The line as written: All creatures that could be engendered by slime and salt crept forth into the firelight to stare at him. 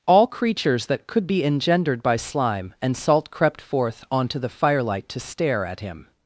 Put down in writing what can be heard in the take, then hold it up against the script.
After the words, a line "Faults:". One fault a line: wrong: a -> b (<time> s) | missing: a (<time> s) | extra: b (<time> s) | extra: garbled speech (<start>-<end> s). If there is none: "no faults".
All creatures that could be engendered by slime and salt crept forth onto the firelight to stare at him.
Faults:
wrong: into -> onto (4.1 s)